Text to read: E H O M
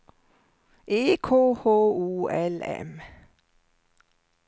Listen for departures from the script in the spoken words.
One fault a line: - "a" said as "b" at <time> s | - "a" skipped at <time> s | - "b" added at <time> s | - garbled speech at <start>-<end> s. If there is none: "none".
- "K" added at 1.1 s
- "L" added at 2.3 s